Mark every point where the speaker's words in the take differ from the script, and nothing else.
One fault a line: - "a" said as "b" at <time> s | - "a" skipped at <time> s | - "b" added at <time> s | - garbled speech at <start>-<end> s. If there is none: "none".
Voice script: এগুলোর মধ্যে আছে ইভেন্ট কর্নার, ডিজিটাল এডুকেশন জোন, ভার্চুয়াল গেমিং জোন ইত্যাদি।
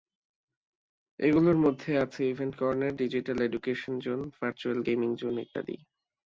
none